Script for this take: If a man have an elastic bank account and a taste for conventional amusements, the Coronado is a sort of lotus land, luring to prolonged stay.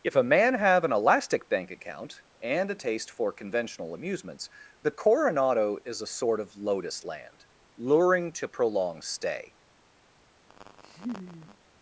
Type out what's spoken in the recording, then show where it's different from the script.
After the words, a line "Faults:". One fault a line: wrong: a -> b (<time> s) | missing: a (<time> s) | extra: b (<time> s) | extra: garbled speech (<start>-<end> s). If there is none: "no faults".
If a man have an elastic bank account and a taste for conventional amusements, the Coronado is a sort of lotus land, luring to prolonged stay.
Faults:
no faults